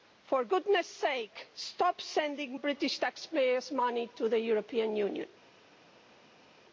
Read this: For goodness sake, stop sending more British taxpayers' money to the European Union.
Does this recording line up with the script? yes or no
no